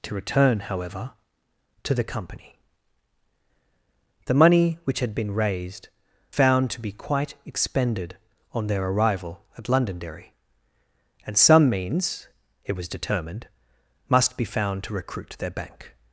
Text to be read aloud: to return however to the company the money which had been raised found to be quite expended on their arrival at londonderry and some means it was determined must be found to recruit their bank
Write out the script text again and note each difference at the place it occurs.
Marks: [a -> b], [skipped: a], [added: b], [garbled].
to return however to the company the money which had been raised found to be quite expended on their arrival at londonderry and some means it was determined must be found to recruit their bank